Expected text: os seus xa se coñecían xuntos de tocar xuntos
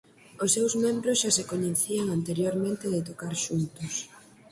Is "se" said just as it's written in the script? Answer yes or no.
yes